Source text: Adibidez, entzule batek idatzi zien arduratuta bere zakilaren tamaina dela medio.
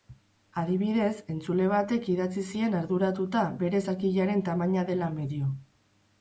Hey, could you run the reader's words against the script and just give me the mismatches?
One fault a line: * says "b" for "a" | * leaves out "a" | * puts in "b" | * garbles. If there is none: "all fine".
all fine